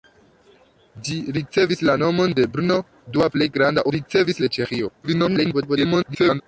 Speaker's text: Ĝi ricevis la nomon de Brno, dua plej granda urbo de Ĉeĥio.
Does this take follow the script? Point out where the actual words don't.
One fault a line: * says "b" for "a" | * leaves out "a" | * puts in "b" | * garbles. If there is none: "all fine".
* says "ricevis" for "urbo"
* garbles